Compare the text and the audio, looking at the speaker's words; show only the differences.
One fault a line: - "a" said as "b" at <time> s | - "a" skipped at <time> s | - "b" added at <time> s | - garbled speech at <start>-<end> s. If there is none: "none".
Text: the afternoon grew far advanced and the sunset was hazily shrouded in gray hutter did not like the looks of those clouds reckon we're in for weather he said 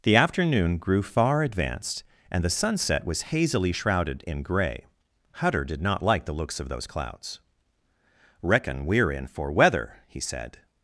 none